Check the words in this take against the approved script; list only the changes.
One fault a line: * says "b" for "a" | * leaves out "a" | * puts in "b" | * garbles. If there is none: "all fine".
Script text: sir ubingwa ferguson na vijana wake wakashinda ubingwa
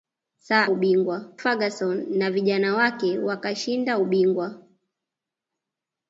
all fine